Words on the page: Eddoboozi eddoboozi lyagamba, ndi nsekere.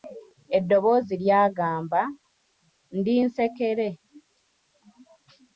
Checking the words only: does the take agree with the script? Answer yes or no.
no